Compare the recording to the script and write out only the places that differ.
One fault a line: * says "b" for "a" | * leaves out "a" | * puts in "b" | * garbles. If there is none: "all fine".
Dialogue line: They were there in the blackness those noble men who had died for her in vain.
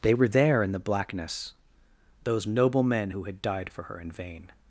all fine